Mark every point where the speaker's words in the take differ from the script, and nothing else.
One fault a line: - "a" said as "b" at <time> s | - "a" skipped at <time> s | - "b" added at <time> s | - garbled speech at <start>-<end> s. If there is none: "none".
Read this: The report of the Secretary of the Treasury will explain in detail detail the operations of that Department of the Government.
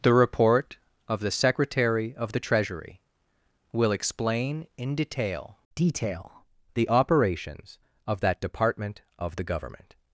none